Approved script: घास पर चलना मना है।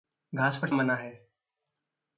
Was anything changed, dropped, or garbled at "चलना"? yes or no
yes